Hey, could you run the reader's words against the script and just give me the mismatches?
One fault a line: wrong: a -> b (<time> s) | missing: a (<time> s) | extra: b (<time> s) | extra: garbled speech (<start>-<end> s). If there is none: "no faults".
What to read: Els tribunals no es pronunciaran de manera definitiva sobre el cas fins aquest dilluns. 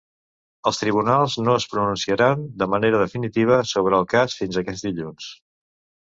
no faults